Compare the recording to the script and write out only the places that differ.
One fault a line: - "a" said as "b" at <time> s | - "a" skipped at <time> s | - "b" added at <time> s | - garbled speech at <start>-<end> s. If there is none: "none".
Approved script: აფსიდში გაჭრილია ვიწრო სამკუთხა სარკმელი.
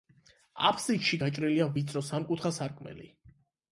none